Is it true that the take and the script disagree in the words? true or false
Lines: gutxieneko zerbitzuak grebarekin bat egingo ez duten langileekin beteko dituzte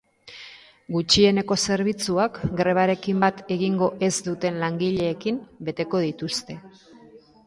false